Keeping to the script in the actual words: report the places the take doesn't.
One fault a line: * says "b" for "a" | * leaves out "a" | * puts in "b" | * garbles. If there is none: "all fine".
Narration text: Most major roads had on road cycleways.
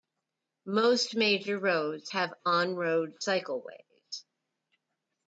* says "have" for "had"